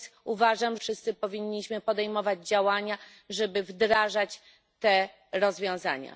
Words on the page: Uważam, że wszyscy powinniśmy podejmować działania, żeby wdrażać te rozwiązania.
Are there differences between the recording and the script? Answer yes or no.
yes